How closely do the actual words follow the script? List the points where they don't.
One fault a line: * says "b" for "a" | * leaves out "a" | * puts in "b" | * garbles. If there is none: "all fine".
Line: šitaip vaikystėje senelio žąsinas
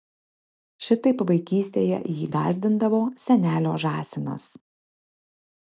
* puts in "jį gąsdindavo"